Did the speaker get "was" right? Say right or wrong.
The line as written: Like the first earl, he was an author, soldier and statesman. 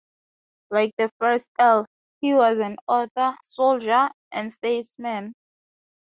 right